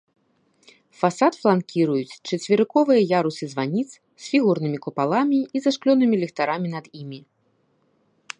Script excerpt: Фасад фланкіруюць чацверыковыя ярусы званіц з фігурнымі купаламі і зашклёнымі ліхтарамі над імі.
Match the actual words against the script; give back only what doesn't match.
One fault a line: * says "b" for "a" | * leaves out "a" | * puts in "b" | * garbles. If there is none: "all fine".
all fine